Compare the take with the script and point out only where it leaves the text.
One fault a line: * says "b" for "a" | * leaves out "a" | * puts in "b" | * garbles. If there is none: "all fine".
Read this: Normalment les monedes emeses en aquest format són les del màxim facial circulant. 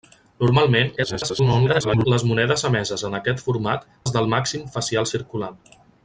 * garbles
* leaves out "són"